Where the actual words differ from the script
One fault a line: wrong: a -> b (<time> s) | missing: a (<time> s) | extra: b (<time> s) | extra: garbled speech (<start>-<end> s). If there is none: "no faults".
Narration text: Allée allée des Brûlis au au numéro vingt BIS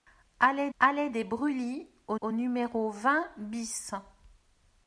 no faults